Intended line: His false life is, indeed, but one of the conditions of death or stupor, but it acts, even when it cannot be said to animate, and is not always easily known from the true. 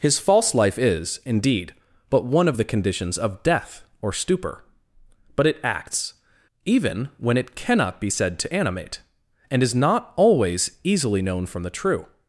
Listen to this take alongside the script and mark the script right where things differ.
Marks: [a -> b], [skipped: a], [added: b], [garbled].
His false life is, indeed, but one of the conditions of death or stupor, but it acts, even when it cannot be said to animate, and is not always easily known from the true.